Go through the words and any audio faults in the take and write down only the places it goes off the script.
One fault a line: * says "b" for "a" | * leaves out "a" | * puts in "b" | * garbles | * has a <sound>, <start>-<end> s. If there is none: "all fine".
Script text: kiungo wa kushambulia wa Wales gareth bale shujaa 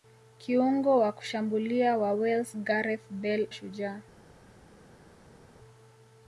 all fine